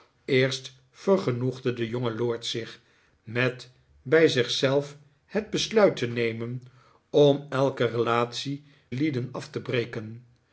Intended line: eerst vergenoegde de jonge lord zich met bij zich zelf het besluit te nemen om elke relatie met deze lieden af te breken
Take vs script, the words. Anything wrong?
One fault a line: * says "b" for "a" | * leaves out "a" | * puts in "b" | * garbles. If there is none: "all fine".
* leaves out "met deze"